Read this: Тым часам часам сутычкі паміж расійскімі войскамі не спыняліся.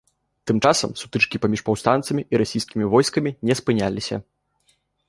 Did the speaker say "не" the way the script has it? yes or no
yes